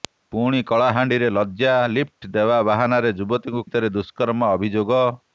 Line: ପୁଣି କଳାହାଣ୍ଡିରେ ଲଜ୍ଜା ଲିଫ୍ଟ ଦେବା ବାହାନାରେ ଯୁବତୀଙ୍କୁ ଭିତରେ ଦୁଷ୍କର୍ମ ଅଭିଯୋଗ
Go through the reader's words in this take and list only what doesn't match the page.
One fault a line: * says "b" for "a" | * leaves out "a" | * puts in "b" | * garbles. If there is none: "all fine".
all fine